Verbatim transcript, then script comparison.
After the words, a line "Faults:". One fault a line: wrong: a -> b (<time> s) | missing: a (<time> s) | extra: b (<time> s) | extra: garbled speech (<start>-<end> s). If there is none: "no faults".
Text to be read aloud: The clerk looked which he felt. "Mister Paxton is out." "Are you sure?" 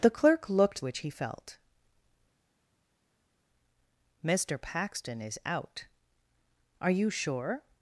The clerk looked which he felt. "Mister Paxton is out." "Are you sure?"
Faults:
no faults